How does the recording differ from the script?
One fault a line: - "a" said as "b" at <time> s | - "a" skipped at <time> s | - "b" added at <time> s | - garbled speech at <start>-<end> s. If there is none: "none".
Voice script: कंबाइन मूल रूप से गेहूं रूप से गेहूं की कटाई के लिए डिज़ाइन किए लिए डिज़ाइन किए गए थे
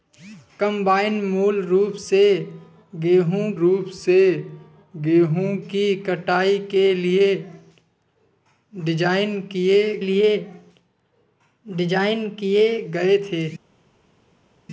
none